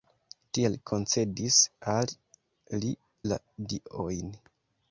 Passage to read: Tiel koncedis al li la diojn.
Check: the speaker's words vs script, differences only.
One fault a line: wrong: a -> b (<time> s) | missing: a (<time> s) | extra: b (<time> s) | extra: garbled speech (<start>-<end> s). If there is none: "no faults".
no faults